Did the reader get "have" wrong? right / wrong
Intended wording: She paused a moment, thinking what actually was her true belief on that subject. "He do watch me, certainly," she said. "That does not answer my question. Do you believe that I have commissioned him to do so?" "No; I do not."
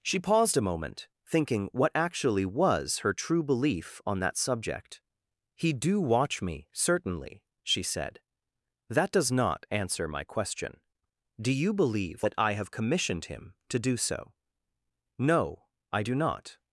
right